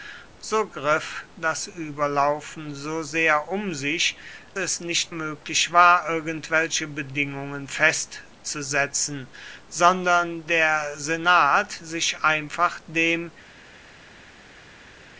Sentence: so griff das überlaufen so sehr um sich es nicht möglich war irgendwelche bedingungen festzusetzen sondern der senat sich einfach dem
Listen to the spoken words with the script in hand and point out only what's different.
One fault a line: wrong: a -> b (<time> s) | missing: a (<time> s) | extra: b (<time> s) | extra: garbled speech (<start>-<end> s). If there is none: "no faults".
no faults